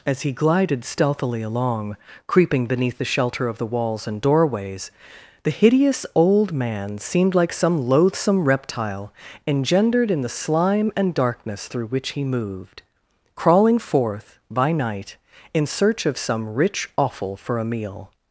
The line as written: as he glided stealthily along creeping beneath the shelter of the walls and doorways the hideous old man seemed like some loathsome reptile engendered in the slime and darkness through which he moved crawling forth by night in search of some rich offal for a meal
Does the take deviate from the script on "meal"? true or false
false